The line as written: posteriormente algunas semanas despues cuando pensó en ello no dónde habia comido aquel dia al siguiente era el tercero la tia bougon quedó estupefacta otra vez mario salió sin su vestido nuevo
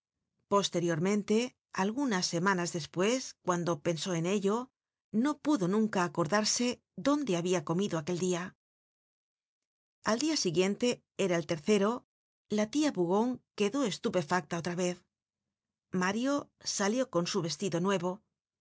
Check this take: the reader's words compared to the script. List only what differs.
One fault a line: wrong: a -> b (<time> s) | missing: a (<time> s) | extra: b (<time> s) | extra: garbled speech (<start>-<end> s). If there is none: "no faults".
extra: pudo nunca acordarse (5.4 s)
extra: dia (10.2 s)
wrong: sin -> con (17.1 s)